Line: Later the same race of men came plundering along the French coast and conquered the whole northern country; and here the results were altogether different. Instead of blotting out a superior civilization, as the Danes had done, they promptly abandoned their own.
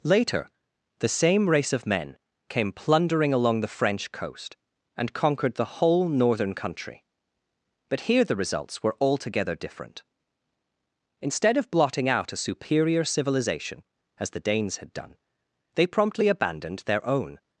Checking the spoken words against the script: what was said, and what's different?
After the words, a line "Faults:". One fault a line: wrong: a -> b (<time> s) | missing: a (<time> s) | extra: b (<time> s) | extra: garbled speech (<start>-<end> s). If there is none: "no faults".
Later the same race of men came plundering along the French coast and conquered the whole northern country; but here the results were altogether different. Instead of blotting out a superior civilization, as the Danes had done, they promptly abandoned their own.
Faults:
wrong: and -> but (7.9 s)